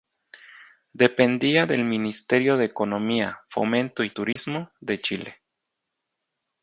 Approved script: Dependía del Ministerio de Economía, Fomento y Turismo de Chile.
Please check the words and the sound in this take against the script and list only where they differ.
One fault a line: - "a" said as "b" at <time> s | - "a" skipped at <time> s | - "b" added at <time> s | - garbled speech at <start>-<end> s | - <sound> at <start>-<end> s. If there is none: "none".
- dropout at 4.3-4.4 s